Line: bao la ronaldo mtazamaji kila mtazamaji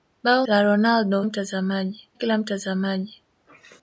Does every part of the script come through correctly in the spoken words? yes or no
yes